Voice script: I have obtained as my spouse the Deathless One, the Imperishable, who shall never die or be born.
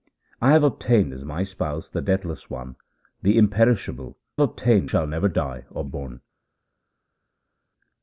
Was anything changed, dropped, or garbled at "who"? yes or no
yes